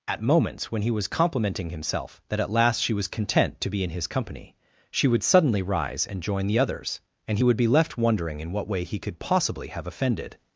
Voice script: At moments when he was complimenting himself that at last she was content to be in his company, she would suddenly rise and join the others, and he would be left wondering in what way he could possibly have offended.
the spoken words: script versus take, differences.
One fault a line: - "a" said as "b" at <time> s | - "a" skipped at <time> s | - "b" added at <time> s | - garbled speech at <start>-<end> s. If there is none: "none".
none